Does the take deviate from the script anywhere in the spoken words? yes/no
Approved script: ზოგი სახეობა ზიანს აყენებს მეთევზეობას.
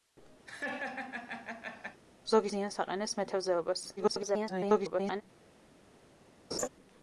yes